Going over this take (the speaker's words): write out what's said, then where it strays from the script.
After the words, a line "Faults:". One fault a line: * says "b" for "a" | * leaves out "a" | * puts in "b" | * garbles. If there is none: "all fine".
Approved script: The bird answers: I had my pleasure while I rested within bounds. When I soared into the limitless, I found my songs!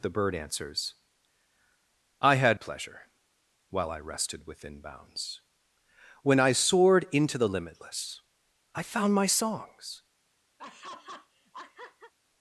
The bird answers: I had pleasure while I rested within bounds. When I soared into the limitless, I found my songs!
Faults:
* leaves out "my"